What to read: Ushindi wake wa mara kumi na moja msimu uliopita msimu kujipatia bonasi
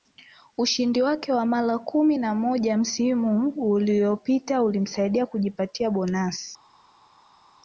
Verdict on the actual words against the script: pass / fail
fail